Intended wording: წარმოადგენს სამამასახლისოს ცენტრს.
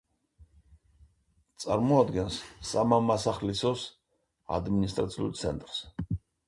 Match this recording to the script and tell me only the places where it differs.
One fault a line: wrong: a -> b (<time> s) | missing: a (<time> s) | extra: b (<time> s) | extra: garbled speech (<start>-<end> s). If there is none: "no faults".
extra: ადმინისტრაციულ (4.6 s)